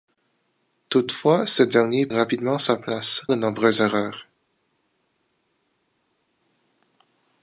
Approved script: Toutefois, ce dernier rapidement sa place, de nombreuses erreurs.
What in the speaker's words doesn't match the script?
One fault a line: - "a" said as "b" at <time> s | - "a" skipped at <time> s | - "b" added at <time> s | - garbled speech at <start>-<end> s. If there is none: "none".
none